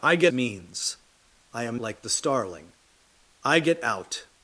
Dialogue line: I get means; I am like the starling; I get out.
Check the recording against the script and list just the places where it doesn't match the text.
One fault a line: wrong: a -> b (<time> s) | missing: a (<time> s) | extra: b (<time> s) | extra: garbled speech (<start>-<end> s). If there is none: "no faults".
no faults